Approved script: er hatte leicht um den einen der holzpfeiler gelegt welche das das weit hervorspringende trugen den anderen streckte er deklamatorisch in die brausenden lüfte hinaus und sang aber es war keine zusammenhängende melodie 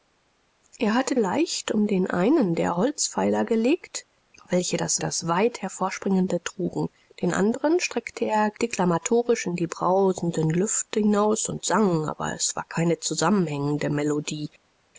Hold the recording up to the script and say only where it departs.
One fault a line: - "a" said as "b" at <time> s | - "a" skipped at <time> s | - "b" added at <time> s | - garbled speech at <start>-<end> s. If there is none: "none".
none